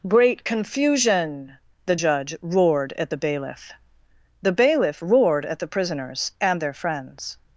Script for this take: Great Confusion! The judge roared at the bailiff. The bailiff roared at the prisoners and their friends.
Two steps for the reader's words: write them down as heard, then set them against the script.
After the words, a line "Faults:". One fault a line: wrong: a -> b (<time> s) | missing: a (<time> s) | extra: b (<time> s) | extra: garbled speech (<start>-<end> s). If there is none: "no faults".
Great Confusion! The judge roared at the bailiff. The bailiff roared at the prisoners and their friends.
Faults:
no faults